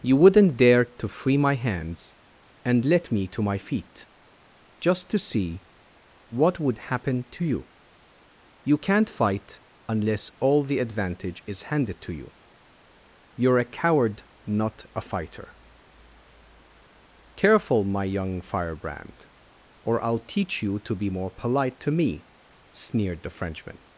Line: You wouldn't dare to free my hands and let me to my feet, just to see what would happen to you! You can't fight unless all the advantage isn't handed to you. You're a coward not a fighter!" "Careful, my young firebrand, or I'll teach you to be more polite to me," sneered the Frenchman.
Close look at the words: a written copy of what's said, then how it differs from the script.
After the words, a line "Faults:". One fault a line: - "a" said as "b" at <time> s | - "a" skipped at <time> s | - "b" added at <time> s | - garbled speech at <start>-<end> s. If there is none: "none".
You wouldn't dare to free my hands and let me to my feet, just to see what would happen to you! You can't fight unless all the advantage is handed to you. You're a coward not a fighter!" "Careful, my young firebrand, or I'll teach you to be more polite to me," sneered the Frenchman.
Faults:
- "isn't" said as "is" at 11.4 s